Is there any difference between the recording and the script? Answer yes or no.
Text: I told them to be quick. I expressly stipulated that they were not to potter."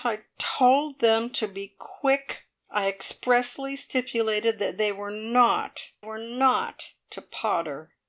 yes